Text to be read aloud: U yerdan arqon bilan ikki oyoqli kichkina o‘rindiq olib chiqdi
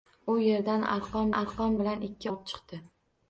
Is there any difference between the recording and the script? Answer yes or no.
yes